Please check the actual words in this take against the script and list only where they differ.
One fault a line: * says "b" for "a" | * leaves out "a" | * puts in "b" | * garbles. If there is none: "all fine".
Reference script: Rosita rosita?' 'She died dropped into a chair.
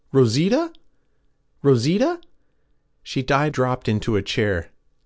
all fine